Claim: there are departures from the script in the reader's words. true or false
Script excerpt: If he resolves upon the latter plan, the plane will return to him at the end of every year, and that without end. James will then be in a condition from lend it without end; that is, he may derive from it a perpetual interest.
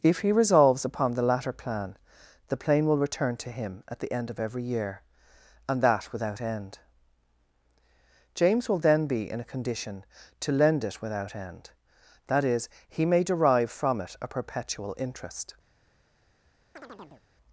true